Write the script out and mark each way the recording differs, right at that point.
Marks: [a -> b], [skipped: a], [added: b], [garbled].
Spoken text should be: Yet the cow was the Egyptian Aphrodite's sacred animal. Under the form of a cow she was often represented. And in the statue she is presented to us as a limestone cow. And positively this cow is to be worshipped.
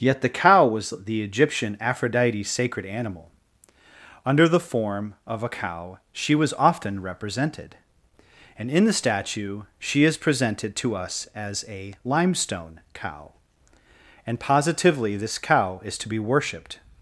Yet the cow was the Egyptian Aphrodite's sacred animal. Under the form of a cow she was often represented. And in the statue she is presented to us as a limestone cow. And positively this cow is to be worshipped.